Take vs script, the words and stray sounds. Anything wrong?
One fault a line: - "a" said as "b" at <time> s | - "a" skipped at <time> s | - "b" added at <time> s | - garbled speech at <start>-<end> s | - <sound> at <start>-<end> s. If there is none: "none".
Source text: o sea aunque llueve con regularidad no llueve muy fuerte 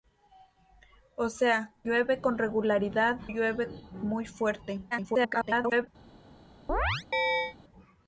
- "aunque" skipped at 1.8 s
- "no" skipped at 3.2 s
- garbled speech at 4.9-5.9 s
- chirp at 6.7-7.6 s